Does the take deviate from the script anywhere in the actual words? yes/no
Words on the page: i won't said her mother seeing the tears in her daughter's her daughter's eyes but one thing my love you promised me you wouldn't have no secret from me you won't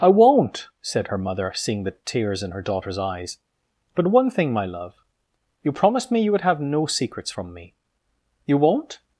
yes